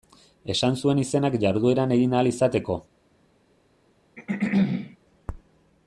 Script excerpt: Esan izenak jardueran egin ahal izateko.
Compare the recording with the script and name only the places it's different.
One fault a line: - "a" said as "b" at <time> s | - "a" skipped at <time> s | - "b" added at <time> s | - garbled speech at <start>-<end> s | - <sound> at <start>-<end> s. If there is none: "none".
- "zuen" added at 0.8 s
- throat clearing at 4.2-5.0 s